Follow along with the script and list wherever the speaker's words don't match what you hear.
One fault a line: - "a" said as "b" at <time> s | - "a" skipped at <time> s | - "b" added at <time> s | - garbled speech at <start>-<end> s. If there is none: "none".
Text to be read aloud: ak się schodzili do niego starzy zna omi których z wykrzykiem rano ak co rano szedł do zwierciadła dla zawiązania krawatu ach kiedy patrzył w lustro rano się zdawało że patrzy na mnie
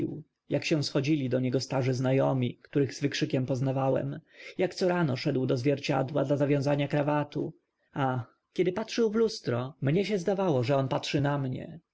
- "rano" said as "poznawałem" at 3.5 s
- "rano" said as "mnie" at 9.8 s
- "on" added at 10.8 s